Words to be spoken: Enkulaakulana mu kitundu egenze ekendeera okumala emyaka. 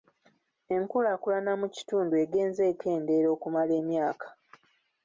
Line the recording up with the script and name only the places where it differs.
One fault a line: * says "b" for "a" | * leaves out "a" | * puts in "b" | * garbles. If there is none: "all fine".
all fine